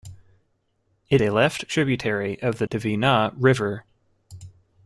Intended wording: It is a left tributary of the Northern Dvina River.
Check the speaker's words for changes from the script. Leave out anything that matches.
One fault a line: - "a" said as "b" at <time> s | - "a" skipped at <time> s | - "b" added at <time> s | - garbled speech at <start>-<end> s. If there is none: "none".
- "is" skipped at 1.2 s
- "Northern" skipped at 2.7 s